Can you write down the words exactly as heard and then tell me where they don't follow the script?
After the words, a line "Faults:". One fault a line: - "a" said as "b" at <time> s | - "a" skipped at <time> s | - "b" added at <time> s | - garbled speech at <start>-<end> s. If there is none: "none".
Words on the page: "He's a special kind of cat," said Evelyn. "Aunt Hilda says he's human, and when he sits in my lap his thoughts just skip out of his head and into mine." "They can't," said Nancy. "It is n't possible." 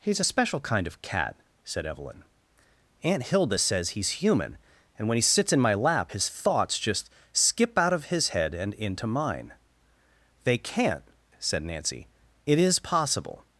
"He's a special kind of cat," said Evelyn. "Aunt Hilda says he's human, and when he sits in my lap his thoughts just skip out of his head and into mine." "They can't," said Nancy. "It is possible."
Faults:
- "n't" skipped at 12.8 s